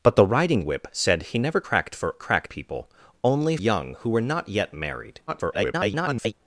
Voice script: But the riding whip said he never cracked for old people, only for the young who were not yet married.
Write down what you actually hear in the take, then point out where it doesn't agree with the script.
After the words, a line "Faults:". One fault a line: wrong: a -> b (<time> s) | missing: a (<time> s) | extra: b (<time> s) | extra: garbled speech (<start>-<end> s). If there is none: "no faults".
But the riding whip said he never cracked for cracked people, only young who were not yet married. [garbled]
Faults:
wrong: old -> cracked (2.2 s)
missing: for the (3.6 s)
extra: garbled speech (5.3-6.3 s)